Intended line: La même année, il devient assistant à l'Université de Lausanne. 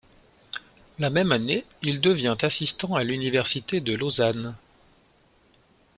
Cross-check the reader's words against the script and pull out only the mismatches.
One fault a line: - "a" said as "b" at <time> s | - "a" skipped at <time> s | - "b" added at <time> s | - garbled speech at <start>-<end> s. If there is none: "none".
none